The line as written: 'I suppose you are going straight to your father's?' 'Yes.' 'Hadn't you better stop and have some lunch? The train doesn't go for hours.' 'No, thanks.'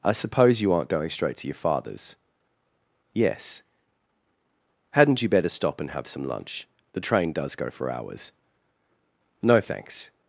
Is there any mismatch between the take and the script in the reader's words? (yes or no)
yes